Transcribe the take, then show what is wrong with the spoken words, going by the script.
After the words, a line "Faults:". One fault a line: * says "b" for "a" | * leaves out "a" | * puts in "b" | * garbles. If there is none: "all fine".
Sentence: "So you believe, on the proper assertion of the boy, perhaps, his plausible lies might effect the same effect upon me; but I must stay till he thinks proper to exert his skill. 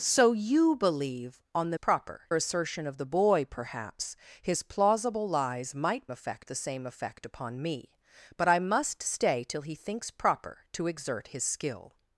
"So you believe, on the proper assertion of the boy, perhaps, his plausible lies might effect the same effect upon me; but I must stay till he thinks proper to exert his skill.
Faults:
all fine